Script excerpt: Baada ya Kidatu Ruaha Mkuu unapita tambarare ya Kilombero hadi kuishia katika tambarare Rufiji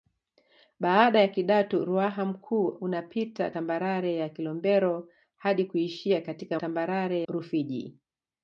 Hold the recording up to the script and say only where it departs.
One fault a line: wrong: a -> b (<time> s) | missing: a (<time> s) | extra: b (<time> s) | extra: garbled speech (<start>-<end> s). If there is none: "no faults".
no faults